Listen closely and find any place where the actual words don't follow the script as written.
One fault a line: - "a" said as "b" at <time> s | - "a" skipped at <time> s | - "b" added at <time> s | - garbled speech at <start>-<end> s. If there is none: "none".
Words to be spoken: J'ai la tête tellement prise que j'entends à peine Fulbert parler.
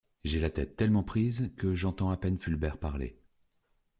none